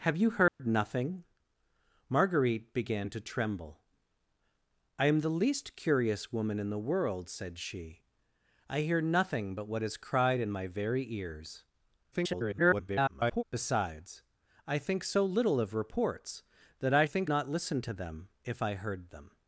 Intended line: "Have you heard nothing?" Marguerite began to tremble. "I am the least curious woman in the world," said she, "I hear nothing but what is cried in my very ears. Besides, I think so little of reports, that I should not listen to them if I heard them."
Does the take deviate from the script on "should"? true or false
true